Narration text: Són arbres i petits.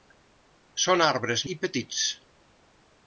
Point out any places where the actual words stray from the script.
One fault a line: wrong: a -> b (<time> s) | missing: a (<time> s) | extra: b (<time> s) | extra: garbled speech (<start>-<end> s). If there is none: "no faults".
no faults